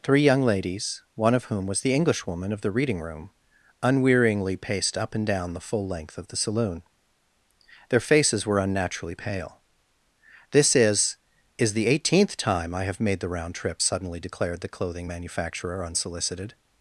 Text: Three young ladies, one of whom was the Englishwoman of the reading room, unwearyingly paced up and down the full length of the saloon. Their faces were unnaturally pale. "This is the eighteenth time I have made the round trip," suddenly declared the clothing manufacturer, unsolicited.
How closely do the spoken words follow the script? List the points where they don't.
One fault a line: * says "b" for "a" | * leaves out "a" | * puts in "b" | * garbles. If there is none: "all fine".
* puts in "is"